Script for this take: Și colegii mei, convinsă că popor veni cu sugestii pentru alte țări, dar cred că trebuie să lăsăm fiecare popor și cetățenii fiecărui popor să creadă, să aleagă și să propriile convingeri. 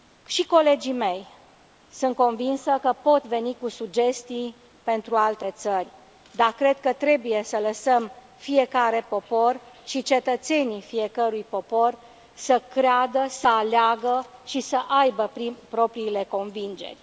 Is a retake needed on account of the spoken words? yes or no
yes